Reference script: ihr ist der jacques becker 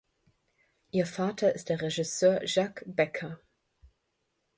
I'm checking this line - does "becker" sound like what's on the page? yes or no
yes